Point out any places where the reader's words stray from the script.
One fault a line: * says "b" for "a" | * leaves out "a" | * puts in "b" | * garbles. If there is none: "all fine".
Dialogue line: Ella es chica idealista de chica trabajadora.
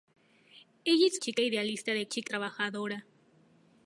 all fine